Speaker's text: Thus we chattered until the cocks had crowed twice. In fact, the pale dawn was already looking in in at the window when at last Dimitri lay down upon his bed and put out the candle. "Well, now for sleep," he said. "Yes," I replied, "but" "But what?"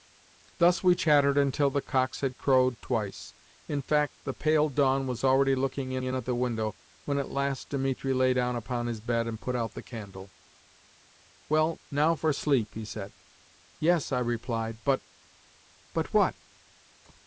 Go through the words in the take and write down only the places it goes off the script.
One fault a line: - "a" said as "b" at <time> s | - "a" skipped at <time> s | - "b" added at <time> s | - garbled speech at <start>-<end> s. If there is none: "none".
none